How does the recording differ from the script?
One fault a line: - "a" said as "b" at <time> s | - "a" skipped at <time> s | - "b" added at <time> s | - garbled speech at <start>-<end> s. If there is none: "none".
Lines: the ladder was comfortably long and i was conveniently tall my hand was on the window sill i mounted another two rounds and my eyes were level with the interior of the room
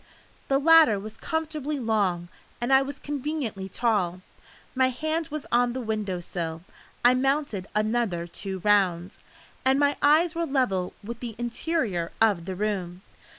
none